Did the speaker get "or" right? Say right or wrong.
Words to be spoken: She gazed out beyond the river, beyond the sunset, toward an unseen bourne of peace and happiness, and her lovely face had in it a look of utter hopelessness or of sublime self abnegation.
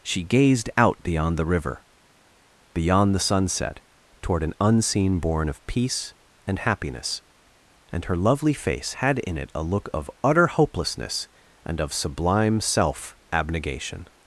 wrong